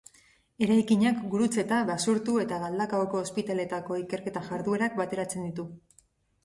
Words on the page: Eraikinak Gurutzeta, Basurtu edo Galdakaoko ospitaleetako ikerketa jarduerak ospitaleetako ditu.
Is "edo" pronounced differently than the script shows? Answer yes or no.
yes